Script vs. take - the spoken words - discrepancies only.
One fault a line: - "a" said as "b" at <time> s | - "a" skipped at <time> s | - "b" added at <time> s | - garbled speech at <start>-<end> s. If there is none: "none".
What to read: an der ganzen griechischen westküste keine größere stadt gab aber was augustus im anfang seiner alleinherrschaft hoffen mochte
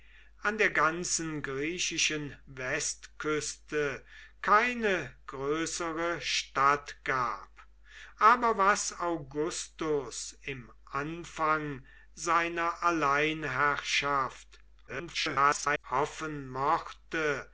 - garbled speech at 14.9-15.8 s